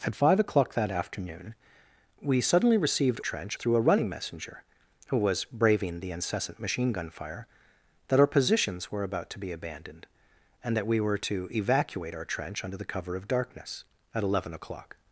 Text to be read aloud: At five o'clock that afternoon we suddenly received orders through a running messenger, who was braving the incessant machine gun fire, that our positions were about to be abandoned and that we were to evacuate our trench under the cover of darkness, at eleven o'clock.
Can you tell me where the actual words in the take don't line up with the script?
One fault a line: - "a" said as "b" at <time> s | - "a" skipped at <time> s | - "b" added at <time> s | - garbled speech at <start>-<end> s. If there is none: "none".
- "orders" said as "trench" at 3.2 s